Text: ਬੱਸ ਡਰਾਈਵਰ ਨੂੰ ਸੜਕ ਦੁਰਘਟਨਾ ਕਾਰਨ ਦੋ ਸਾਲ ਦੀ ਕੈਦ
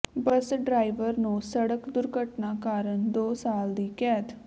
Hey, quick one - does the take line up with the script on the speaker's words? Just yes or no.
yes